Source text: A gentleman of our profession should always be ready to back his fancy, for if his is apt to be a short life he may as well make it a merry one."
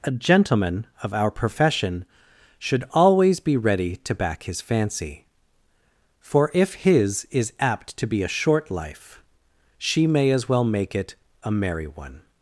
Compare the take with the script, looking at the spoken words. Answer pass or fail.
fail